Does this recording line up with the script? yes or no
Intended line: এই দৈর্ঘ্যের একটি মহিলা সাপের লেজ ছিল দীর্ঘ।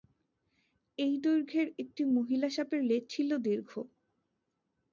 yes